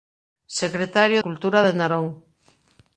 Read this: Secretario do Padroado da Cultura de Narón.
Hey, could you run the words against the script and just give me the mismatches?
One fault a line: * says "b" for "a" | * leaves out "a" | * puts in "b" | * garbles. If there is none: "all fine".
* leaves out "do Padroado da"